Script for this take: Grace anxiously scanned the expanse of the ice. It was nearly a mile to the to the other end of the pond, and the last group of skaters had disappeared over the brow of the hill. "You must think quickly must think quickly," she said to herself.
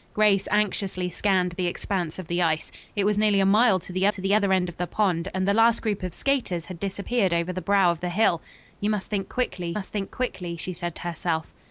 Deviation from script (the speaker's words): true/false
false